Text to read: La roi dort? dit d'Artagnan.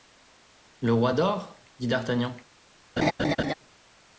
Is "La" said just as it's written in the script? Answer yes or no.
no